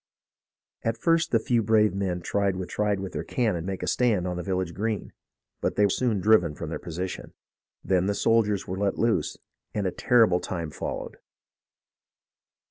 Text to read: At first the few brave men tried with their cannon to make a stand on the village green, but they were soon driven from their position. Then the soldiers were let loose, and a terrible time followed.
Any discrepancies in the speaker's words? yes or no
yes